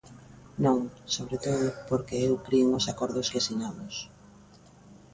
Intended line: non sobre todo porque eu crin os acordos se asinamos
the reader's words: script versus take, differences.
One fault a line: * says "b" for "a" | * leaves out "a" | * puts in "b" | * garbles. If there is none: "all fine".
* says "que" for "se"